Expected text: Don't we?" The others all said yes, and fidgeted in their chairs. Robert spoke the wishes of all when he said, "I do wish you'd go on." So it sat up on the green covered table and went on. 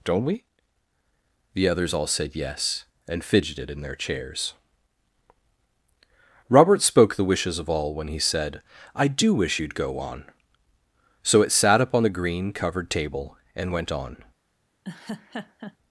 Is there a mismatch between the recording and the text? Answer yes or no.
no